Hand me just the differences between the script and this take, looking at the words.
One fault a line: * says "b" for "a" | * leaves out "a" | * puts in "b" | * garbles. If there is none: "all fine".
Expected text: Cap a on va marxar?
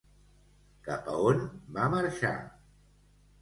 all fine